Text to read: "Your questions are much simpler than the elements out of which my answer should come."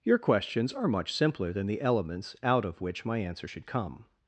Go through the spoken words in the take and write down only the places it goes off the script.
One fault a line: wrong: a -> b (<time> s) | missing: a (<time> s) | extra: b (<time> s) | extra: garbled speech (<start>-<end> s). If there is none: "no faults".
no faults